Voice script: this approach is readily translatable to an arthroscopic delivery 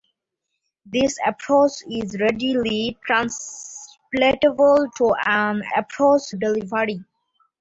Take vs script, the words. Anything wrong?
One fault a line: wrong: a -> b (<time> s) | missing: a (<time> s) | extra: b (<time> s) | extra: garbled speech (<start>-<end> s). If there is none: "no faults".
wrong: arthroscopic -> approach (5.8 s)